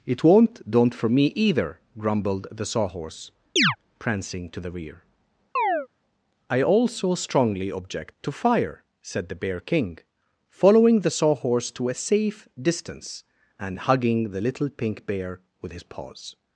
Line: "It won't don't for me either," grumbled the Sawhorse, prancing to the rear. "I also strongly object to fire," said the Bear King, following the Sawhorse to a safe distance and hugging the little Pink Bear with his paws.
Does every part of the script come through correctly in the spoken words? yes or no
yes